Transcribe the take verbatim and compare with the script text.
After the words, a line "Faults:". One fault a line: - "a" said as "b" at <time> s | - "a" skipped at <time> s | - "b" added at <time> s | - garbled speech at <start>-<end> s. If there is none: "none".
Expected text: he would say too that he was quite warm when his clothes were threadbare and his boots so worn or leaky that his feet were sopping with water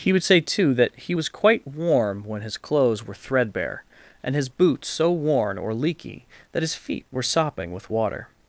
he would say too that he was quite warm when his clothes were threadbare and his boots so worn or leaky that his feet were sopping with water
Faults:
none